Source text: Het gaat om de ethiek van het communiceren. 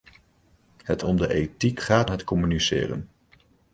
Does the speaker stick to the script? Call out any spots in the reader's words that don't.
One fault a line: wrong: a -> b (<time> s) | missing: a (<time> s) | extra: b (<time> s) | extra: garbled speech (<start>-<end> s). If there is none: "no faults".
missing: gaat (1.0 s)
wrong: van -> gaat (1.8 s)